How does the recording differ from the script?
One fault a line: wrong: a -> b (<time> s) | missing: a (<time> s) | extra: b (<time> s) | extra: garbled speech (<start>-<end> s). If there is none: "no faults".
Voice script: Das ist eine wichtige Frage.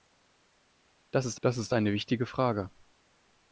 extra: das ist (1.4 s)